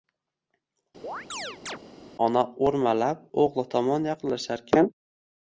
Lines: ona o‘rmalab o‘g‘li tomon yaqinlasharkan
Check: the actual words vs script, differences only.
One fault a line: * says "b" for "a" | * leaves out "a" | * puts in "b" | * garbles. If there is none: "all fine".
all fine